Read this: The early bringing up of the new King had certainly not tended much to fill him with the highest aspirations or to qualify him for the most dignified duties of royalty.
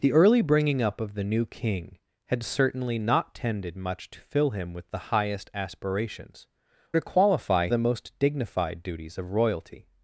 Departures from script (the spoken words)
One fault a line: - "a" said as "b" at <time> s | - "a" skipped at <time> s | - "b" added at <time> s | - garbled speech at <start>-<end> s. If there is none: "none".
- "or" skipped at 6.5 s
- "him for" skipped at 7.7 s